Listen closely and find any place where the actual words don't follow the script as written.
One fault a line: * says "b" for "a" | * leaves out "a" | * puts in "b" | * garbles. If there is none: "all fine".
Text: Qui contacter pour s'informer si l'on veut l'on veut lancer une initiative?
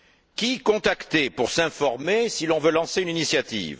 * leaves out "l'on veut"